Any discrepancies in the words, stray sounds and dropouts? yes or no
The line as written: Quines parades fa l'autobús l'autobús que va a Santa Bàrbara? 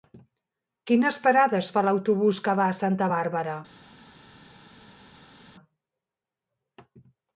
yes